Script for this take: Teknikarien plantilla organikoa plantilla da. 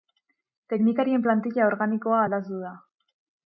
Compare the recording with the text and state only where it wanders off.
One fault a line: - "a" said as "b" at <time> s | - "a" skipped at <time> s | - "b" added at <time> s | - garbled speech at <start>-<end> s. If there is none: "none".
- "plantilla" said as "aldatu" at 2.3 s